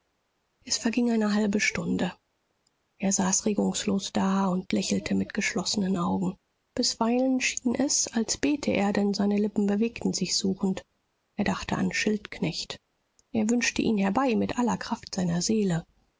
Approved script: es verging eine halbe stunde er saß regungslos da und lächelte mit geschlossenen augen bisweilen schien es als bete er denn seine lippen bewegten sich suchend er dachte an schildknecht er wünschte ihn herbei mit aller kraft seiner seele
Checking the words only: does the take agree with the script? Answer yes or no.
yes